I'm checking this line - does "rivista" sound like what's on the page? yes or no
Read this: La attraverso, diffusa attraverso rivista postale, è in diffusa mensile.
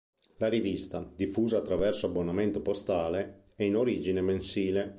no